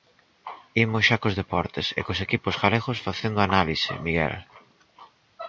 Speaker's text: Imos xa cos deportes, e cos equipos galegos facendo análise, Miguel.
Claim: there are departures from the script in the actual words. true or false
false